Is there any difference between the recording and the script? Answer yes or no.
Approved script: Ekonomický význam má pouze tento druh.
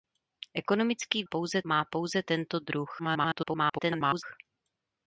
yes